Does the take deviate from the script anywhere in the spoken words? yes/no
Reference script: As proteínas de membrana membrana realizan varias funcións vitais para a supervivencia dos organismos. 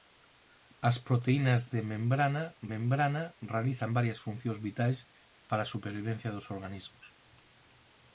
no